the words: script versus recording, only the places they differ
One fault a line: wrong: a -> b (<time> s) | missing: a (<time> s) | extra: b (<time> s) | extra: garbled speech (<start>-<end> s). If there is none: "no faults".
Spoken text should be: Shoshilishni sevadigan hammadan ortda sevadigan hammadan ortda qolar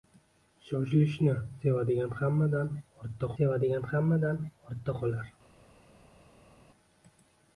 no faults